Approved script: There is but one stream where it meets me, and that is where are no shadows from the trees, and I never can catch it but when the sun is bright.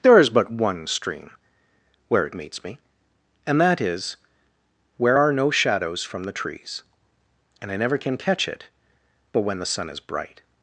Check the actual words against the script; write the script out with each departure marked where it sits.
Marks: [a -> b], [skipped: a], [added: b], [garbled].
There is but one stream where it meets me, and that is where are no shadows from the trees, and I never can catch it but when the sun is bright.